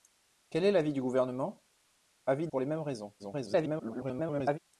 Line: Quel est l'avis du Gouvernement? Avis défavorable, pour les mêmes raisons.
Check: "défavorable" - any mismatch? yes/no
yes